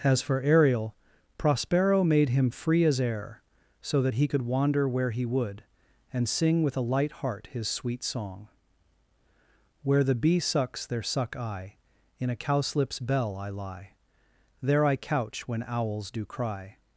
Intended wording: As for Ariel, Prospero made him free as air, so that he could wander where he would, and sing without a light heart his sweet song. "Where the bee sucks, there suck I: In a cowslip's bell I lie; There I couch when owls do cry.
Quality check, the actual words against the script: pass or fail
fail